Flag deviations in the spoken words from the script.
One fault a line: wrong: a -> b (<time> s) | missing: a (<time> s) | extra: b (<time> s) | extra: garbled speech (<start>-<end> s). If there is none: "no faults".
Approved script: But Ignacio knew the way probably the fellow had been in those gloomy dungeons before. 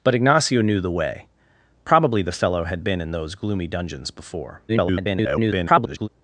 extra: garbled speech (4.7-6.1 s)